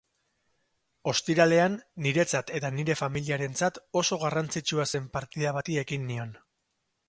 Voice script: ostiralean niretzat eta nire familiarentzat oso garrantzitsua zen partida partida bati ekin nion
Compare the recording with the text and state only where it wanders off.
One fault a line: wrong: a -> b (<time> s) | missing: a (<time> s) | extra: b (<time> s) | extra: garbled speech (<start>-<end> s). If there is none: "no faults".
missing: partida (5.5 s)